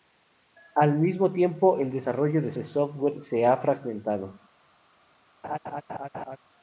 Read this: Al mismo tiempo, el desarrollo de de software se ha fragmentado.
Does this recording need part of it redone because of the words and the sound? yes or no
yes